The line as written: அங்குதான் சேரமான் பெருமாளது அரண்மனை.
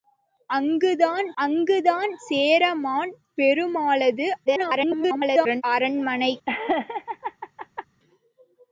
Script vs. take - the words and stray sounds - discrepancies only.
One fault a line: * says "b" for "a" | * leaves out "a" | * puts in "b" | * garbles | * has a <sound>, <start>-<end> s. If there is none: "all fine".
* puts in "அங்குதான்"
* garbles
* has a laugh, 6.5-7.9 s